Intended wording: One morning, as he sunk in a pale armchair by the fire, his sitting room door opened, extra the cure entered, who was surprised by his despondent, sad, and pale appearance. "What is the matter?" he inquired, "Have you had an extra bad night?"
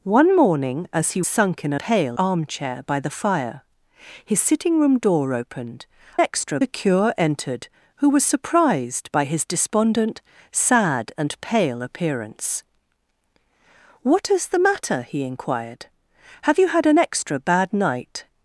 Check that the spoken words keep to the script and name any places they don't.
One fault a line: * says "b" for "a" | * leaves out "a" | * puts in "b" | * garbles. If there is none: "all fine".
all fine